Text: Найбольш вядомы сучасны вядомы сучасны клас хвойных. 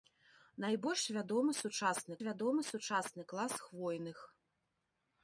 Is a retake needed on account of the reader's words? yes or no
no